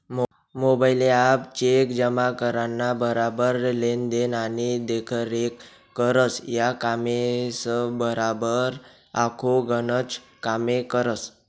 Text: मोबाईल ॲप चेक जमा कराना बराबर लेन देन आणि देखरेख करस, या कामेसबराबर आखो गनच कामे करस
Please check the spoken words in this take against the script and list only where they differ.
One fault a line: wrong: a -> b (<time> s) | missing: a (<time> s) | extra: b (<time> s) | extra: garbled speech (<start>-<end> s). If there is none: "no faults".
no faults